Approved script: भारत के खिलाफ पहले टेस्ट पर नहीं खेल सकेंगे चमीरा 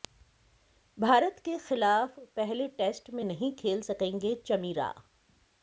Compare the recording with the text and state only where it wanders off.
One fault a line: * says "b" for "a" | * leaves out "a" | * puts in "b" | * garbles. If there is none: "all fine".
* says "में" for "पर"